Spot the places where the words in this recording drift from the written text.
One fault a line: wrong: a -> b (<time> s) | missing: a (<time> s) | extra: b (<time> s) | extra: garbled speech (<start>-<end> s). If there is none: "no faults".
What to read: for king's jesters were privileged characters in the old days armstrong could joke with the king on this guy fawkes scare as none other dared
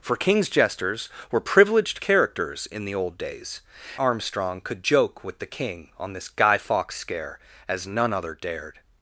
no faults